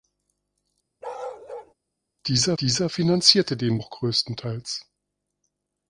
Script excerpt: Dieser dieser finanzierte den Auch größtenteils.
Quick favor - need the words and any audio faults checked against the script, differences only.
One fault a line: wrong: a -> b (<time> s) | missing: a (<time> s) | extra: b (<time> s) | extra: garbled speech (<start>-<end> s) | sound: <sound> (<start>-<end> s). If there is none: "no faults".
sound: bark (1.0-1.7 s)